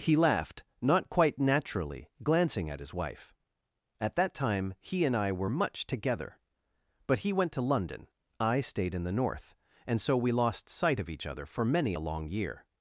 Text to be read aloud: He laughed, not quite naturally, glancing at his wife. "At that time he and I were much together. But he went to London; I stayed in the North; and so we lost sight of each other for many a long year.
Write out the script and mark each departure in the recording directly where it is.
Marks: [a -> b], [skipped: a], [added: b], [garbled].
He laughed, not quite naturally, glancing at his wife. "At that time he and I were much together. But he went to London; I stayed in the North; and so we lost sight of each other for many a long year.